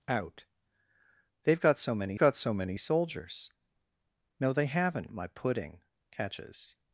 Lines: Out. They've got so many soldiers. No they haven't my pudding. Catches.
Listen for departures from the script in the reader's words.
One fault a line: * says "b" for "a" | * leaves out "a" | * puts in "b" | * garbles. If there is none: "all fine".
* puts in "got so many"